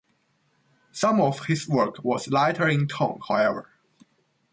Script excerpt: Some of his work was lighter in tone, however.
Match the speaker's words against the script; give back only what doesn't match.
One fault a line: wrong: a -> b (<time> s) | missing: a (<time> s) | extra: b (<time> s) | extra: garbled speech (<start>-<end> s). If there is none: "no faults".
no faults